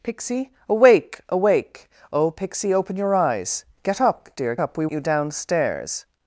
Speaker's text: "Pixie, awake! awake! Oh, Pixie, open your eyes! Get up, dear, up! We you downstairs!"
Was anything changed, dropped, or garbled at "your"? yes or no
no